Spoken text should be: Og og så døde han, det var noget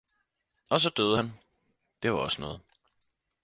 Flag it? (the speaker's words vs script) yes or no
yes